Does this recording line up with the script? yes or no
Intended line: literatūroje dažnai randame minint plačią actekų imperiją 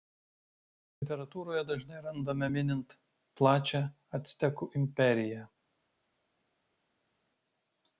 yes